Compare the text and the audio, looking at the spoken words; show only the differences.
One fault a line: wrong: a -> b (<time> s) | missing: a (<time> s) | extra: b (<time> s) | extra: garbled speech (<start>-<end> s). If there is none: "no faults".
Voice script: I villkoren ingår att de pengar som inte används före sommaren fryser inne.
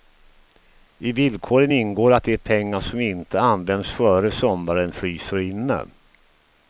no faults